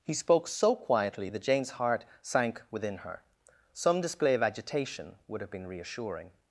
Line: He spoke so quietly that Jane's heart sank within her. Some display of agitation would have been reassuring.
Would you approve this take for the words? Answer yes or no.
yes